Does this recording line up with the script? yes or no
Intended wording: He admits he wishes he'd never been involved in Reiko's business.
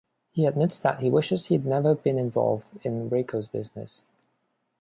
no